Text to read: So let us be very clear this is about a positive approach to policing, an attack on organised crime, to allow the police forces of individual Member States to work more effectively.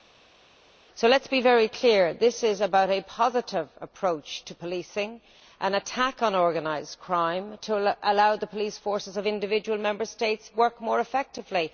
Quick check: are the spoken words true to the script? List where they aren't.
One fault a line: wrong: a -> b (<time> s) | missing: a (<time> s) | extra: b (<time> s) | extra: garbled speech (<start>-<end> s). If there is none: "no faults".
no faults